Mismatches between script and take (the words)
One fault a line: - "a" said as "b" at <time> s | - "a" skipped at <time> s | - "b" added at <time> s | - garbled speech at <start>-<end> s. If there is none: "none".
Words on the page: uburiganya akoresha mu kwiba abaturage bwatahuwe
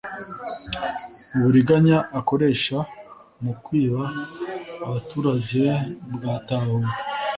none